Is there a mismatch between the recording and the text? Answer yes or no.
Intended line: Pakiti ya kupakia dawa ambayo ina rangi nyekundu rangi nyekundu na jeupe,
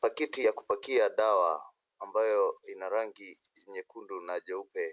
yes